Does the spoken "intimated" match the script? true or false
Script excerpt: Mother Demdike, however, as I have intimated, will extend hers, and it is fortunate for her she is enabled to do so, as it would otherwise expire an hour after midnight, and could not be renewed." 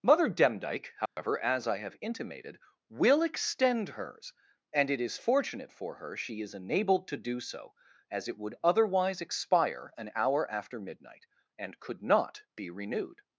true